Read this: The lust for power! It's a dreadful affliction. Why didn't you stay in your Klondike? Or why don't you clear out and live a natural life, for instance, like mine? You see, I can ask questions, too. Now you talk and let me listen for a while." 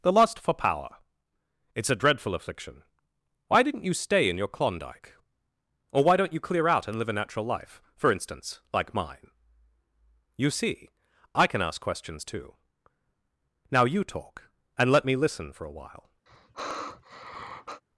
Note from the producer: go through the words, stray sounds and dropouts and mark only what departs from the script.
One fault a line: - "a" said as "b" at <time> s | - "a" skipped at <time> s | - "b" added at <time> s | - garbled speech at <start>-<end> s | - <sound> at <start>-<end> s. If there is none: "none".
- sigh at 16.3-17.8 s